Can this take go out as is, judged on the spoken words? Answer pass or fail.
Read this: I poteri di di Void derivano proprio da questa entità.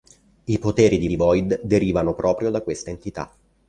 pass